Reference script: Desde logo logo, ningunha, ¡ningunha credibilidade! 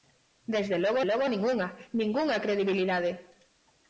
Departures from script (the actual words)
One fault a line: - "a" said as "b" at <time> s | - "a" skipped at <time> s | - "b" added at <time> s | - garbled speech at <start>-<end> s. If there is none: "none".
none